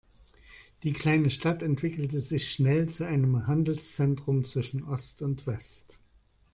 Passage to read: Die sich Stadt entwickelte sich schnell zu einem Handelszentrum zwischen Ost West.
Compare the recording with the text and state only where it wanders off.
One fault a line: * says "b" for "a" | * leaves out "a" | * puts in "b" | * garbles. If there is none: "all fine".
* says "kleine" for "sich"
* puts in "und"